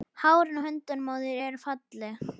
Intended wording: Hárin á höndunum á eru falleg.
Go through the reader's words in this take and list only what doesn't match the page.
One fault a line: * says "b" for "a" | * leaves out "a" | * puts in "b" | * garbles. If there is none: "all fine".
* puts in "þér"